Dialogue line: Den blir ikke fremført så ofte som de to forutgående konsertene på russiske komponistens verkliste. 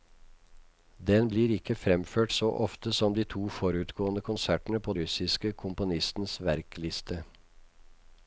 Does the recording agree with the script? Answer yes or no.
yes